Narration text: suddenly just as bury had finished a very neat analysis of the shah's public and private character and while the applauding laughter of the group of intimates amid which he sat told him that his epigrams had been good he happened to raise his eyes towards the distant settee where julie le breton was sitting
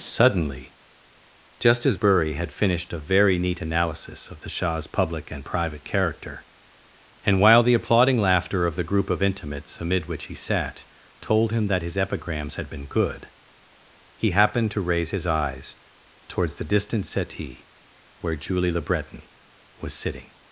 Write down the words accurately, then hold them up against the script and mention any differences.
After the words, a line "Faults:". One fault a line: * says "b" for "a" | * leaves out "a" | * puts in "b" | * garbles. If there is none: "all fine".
suddenly just as bury had finished a very neat analysis of the shah's public and private character and while the applauding laughter of the group of intimates amid which he sat told him that his epigrams had been good he happened to raise his eyes towards the distant settee where julie le breton was sitting
Faults:
all fine